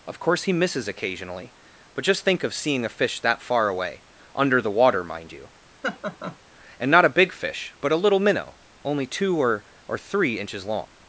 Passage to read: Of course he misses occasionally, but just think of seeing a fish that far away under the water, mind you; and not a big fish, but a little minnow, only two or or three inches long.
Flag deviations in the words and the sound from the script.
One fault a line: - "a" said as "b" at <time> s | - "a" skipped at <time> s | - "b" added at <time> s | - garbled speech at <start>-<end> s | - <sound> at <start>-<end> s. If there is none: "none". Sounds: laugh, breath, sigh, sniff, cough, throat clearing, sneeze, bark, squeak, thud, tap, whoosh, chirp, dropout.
- laugh at 5.8-6.4 s